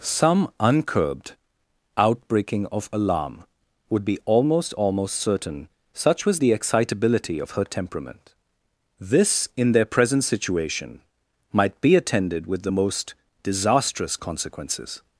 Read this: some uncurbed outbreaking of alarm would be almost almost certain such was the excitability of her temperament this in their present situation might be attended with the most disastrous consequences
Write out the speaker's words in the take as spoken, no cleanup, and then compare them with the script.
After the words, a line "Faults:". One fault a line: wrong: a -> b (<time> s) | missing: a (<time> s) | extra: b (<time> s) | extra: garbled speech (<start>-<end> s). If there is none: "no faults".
some uncurbed outbreaking of alarm would be almost almost certain such was the excitability of her temperament this in their present situation might be attended with the most disastrous consequences
Faults:
no faults